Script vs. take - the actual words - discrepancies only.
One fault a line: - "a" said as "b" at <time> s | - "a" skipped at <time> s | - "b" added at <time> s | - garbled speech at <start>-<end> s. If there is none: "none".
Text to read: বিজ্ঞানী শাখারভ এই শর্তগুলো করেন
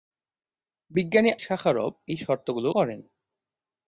none